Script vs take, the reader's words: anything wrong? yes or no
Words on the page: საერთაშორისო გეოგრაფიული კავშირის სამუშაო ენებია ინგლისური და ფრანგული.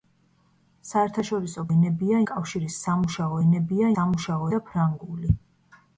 yes